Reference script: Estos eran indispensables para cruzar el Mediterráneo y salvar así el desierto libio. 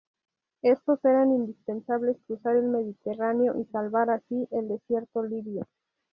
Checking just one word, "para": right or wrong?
wrong